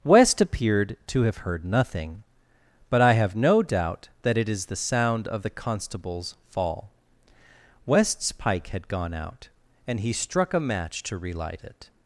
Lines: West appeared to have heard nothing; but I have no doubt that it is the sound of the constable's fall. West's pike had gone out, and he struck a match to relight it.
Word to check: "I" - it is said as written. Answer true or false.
true